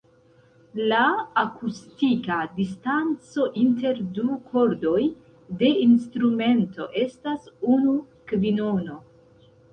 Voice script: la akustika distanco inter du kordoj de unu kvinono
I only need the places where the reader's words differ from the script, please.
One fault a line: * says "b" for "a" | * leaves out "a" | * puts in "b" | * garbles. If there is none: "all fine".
* puts in "instrumento estas"